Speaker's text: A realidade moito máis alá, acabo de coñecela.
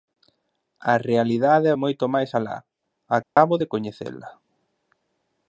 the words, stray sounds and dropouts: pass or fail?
fail